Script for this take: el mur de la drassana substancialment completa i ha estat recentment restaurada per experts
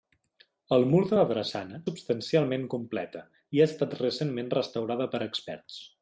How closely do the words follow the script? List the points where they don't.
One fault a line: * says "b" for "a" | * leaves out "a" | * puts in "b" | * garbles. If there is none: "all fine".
all fine